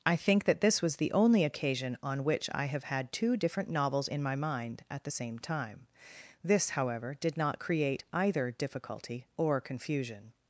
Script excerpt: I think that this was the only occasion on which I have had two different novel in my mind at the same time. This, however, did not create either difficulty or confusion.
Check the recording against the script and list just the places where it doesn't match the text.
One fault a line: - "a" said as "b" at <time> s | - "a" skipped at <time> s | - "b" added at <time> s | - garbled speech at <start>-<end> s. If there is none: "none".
- "novel" said as "novels" at 3.7 s